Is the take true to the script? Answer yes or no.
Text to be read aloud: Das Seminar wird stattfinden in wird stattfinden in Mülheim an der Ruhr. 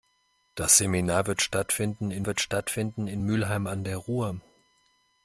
yes